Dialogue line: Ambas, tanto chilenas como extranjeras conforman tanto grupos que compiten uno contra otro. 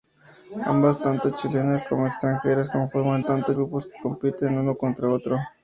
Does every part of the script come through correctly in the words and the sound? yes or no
yes